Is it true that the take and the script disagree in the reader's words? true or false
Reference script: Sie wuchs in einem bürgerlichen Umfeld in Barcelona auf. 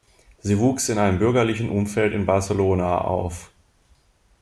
false